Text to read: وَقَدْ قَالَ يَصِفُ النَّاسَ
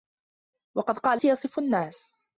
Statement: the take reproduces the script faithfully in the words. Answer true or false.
true